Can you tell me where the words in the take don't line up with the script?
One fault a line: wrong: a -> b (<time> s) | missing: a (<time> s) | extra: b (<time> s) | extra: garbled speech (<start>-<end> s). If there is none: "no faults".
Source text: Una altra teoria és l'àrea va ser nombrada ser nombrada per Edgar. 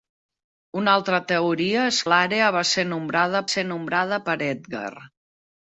no faults